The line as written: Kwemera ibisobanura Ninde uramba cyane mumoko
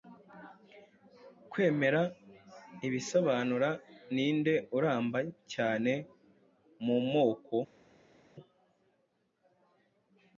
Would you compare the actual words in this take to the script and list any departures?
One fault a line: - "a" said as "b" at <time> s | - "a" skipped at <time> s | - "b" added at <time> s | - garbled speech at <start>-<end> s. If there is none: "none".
none